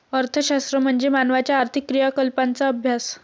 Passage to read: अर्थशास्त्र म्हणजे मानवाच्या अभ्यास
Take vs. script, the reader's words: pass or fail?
fail